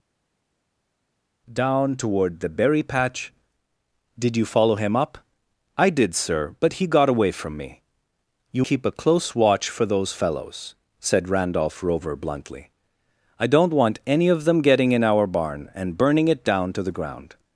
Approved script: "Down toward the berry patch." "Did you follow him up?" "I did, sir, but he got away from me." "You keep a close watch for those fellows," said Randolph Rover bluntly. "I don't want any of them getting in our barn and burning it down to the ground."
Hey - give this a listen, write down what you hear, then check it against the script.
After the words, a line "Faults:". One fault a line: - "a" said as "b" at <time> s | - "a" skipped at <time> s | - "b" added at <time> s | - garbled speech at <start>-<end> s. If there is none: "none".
"Down toward the berry patch." "Did you follow him up?" "I did, sir, but he got away from me." "You keep a close watch for those fellows," said Randolph Rover bluntly. "I don't want any of them getting in our barn and burning it down to the ground."
Faults:
none